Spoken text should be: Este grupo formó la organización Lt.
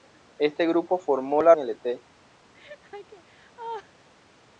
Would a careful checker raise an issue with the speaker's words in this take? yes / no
yes